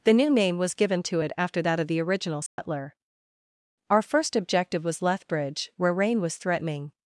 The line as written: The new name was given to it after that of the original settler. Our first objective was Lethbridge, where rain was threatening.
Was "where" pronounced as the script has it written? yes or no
yes